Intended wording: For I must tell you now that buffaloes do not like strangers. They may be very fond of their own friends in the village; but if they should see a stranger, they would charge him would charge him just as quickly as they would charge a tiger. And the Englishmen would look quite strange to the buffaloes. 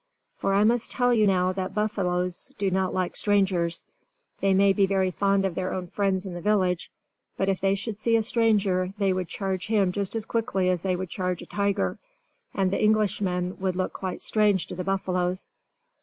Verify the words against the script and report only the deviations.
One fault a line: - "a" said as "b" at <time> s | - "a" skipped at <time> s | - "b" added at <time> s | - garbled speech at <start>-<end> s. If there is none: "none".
- "would charge him" skipped at 9.9 s